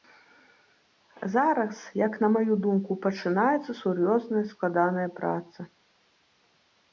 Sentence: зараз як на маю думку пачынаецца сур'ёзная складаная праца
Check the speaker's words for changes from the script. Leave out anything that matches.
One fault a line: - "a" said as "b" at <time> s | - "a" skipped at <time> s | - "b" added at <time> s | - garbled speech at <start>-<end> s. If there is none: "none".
none